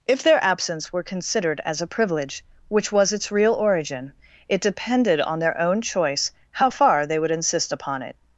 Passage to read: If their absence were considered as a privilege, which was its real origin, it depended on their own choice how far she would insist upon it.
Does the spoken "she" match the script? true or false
false